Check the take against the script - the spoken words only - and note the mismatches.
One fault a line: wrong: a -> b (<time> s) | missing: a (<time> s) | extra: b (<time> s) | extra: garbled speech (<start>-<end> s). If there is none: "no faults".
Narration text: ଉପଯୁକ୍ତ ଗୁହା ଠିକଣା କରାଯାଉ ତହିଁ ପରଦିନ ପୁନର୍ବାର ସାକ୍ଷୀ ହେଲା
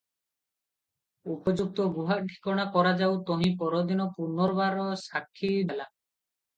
no faults